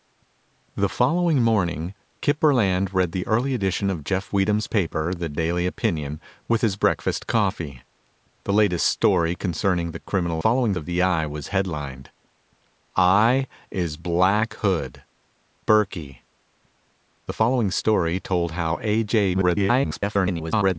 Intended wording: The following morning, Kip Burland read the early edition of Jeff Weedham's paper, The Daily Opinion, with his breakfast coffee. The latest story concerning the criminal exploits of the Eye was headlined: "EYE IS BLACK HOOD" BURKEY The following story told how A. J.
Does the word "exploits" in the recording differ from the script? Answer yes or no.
yes